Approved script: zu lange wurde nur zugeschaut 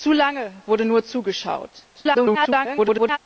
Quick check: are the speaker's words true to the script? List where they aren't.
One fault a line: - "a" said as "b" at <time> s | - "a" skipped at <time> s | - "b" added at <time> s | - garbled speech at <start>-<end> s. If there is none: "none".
- garbled speech at 1.9-3.2 s